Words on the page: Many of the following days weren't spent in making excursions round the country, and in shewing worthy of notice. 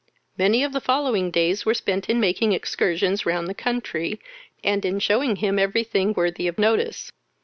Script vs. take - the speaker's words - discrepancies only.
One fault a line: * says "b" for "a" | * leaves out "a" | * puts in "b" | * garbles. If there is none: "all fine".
* says "were" for "weren't"
* puts in "him every thing"